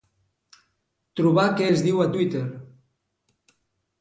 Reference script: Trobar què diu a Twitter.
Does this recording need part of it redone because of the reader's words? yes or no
yes